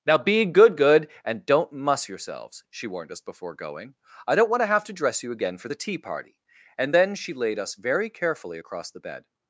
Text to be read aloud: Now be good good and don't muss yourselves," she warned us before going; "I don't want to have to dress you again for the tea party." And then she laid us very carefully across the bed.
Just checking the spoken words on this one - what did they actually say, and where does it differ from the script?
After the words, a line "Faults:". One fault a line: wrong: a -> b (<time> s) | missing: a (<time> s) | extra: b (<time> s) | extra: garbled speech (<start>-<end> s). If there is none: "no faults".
Now be good good and don't muss yourselves," she warned us before going; "I don't want to have to dress you again for the tea party." And then she laid us very carefully across the bed.
Faults:
no faults